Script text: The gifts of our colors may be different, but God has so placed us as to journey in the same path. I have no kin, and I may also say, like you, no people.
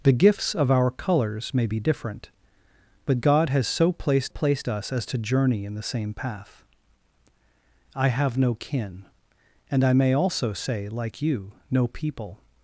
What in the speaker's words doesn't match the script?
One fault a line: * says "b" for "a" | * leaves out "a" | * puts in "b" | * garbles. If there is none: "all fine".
* puts in "placed"